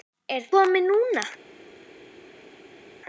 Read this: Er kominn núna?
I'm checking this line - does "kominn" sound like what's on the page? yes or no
yes